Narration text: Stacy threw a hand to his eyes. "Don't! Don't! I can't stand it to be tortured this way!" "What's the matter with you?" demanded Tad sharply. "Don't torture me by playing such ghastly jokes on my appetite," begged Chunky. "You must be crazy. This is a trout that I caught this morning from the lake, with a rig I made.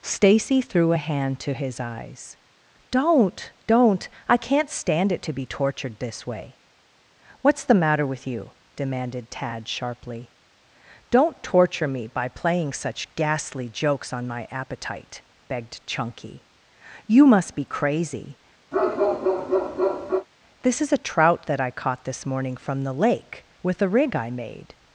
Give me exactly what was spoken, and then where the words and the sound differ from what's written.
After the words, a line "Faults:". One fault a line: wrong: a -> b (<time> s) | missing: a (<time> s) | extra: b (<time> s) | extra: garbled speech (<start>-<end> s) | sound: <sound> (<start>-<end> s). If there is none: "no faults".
Stacy threw a hand to his eyes. "Don't! Don't! I can't stand it to be tortured this way!" "What's the matter with you?" demanded Tad sharply. "Don't torture me by playing such ghastly jokes on my appetite," begged Chunky. "You must be crazy. This is a trout that I caught this morning from the lake, with a rig I made.
Faults:
sound: bark (18.7-20.3 s)